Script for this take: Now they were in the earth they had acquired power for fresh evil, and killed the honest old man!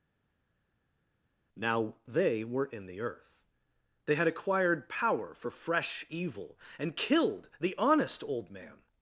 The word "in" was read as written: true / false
true